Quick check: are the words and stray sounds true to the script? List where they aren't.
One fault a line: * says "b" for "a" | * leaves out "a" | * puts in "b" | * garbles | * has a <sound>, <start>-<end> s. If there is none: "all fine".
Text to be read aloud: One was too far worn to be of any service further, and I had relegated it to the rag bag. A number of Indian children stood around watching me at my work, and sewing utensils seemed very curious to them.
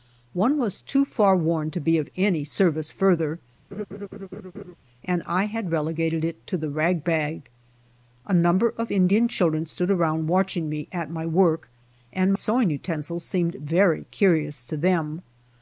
* has a laugh, 3.7-4.8 s